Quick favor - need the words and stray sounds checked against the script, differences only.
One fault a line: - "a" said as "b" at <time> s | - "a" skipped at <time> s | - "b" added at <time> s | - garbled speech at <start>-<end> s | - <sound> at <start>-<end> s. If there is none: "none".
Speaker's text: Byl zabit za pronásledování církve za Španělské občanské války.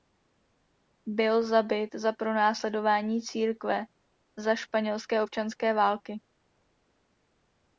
none